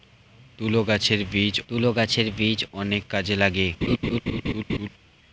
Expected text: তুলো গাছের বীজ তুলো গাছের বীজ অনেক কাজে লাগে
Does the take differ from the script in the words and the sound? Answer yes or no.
yes